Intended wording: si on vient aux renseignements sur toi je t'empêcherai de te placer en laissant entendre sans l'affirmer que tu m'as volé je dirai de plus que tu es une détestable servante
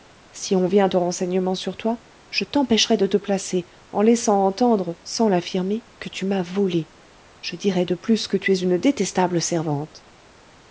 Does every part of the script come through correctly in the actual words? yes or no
yes